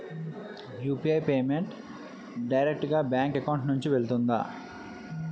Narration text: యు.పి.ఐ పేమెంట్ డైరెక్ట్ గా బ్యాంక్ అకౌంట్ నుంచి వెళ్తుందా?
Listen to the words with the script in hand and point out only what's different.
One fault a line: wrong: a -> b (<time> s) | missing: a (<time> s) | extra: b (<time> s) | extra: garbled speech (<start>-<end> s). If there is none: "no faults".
no faults